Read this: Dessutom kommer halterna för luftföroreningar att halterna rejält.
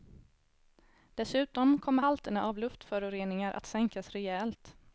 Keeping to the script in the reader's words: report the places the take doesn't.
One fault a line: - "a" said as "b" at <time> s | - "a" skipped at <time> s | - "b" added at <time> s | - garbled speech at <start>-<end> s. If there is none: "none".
- "för" said as "av" at 2.4 s
- "halterna" said as "sänkas" at 3.7 s